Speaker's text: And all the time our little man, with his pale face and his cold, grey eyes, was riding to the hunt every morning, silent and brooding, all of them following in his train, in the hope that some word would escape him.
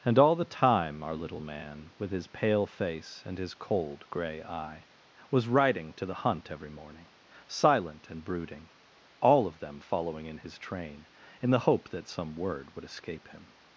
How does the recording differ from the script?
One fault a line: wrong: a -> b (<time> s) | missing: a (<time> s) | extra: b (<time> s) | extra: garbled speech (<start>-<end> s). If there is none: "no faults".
wrong: eyes -> eye (4.4 s)